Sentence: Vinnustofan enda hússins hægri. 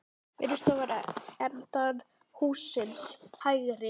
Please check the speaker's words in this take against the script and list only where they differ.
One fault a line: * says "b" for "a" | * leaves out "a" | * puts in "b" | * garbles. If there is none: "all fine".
all fine